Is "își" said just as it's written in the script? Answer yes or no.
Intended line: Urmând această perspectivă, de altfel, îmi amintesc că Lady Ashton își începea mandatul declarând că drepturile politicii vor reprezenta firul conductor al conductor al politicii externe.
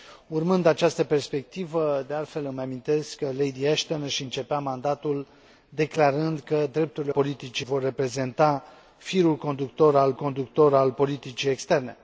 yes